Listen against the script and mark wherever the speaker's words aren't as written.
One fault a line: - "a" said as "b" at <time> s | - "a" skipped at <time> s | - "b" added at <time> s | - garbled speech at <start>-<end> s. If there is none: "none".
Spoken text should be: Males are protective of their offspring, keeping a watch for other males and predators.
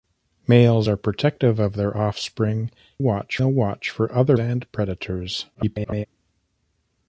- "keeping" said as "watch" at 3.0 s
- "males" skipped at 4.4 s
- garbled speech at 5.5-6.1 s